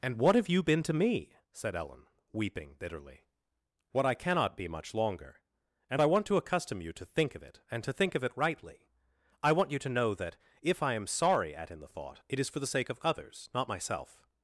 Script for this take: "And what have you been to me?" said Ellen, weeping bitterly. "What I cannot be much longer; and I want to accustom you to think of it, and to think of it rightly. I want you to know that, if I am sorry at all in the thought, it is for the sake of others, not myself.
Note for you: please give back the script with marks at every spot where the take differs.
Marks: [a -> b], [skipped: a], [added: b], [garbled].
"And what have you been to me?" said Ellen, weeping bitterly. "What I cannot be much longer; and I want to accustom you to think of it, and to think of it rightly. I want you to know that, if I am sorry at [skipped: all] in the thought, it is for the sake of others, not myself.